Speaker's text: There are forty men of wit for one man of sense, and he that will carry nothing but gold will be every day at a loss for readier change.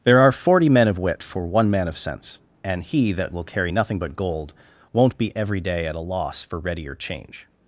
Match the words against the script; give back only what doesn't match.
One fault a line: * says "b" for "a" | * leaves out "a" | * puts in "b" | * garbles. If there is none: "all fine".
* says "won't" for "will"